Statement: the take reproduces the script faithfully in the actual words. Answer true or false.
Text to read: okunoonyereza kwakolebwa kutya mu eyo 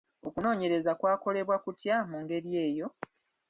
false